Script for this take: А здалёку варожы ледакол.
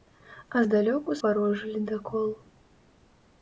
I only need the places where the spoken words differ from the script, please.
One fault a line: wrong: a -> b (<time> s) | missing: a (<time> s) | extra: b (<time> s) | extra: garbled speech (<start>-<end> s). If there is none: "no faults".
no faults